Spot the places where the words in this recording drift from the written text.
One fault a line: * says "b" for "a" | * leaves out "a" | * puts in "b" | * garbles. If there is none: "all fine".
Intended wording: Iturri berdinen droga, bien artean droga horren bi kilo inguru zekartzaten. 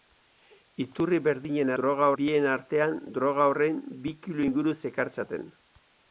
all fine